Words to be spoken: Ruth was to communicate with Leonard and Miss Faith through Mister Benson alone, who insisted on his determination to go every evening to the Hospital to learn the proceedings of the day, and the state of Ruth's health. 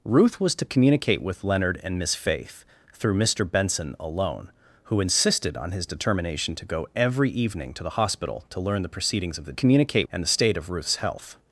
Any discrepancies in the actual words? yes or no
yes